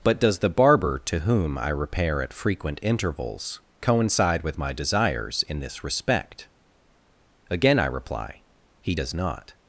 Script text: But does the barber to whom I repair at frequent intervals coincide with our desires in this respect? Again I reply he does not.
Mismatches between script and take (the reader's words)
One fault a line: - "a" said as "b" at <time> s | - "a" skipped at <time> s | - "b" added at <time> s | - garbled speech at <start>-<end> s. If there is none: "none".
- "our" said as "my" at 4.6 s